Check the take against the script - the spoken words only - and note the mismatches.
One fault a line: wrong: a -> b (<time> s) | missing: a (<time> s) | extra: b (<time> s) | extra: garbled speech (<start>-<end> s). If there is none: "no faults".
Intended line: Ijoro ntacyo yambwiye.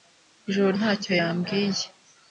no faults